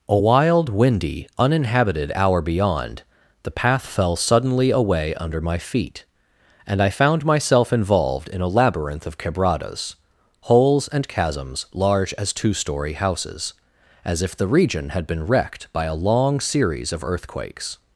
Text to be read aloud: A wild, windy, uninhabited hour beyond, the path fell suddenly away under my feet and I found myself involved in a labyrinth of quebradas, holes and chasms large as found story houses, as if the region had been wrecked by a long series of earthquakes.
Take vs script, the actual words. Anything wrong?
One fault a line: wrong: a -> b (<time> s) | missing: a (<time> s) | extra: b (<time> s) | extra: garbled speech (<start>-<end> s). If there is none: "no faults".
wrong: found -> two (12.3 s)